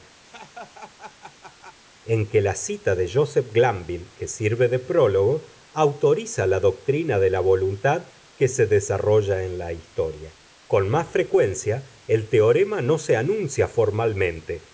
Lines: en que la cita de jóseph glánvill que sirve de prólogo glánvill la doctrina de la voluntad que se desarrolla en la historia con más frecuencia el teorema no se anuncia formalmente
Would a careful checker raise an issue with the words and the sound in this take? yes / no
yes